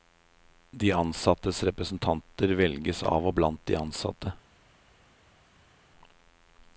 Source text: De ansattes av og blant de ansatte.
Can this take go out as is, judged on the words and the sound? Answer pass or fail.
fail